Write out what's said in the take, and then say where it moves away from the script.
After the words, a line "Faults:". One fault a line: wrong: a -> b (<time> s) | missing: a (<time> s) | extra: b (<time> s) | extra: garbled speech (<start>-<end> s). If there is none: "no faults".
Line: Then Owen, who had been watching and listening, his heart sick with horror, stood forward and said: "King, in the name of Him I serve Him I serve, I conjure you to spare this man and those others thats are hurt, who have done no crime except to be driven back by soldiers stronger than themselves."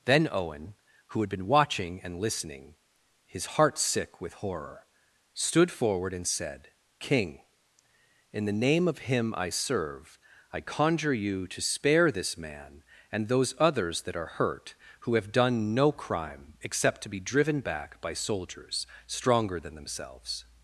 Then Owen, who had been watching and listening, his heart sick with horror, stood forward and said: "King, in the name of Him I serve, I conjure you to spare this man and those others that are hurt, who have done no crime except to be driven back by soldiers stronger than themselves."
Faults:
missing: Him (10.2 s)
missing: serve I (10.6 s)
wrong: thats -> that (14.0 s)